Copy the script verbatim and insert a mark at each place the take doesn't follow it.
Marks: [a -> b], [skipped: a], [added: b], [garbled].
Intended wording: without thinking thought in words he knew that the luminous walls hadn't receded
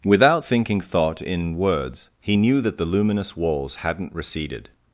without thinking thought in words he knew that the luminous walls hadn't receded